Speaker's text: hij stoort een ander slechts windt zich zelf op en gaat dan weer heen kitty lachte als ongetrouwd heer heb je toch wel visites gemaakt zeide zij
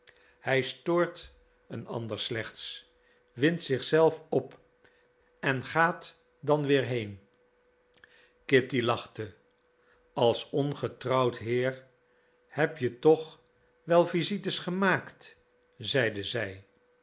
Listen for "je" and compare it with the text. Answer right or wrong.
right